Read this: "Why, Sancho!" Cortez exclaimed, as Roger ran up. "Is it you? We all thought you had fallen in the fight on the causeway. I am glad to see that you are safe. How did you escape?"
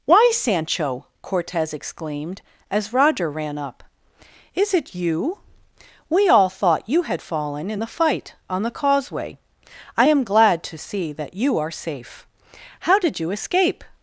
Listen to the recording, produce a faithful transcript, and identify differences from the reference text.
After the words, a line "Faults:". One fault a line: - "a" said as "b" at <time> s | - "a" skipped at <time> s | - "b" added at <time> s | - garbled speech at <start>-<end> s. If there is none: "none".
"Why, Sancho!" Cortez exclaimed, as Roger ran up. "Is it you? We all thought you had fallen in the fight on the causeway. I am glad to see that you are safe. How did you escape?"
Faults:
none